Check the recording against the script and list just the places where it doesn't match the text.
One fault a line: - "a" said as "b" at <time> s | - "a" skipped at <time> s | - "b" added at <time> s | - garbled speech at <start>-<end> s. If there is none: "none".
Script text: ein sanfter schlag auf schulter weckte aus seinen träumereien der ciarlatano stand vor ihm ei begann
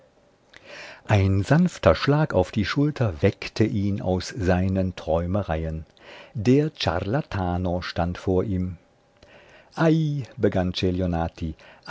- "die" added at 2.5 s
- "ihn" added at 3.6 s